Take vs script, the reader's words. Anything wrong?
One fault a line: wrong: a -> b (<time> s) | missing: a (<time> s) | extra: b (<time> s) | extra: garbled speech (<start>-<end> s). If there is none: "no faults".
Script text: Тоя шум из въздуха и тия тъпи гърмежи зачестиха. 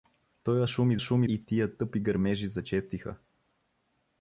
wrong: въздуха -> шум (1.0 s)